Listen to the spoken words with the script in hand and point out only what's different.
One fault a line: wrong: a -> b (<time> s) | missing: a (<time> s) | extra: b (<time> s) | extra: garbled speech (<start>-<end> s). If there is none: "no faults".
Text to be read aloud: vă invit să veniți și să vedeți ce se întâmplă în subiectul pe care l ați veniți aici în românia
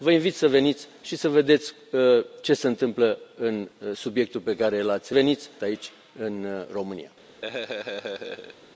no faults